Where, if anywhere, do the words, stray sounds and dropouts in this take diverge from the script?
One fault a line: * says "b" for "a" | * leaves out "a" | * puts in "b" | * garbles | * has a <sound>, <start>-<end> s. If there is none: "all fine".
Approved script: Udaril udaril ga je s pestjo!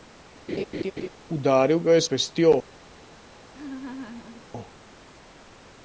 * has a laugh, 0.5-1.1 s
* leaves out "udaril"
* has a laugh, 3.5-4.5 s